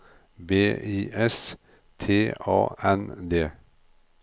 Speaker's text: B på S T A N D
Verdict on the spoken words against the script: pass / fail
fail